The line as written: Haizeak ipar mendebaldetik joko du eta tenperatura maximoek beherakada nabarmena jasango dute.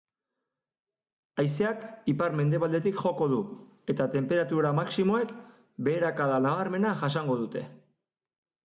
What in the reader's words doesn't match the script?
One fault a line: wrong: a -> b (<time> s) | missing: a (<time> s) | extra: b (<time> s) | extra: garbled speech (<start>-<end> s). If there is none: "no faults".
no faults